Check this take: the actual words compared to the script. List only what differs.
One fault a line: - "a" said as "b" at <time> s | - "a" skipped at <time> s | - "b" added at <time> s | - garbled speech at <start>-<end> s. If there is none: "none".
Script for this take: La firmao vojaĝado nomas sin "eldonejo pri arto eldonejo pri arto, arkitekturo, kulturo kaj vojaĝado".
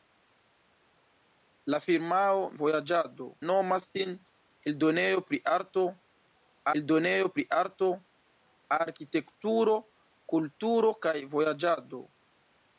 none